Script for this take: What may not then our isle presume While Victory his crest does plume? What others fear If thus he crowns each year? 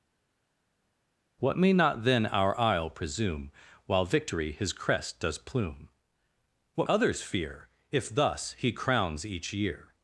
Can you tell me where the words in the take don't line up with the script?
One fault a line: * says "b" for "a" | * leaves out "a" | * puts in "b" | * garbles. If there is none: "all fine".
all fine